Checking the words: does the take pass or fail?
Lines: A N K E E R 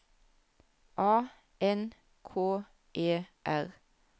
fail